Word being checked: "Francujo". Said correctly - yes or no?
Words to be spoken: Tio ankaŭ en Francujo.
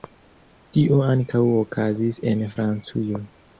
yes